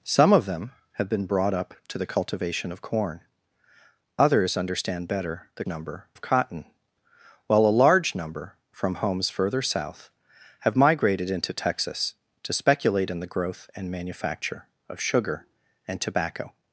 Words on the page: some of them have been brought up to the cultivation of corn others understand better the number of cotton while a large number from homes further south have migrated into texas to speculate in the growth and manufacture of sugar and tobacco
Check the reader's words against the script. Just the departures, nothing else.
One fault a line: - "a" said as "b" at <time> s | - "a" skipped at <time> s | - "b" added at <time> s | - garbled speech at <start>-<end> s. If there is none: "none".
none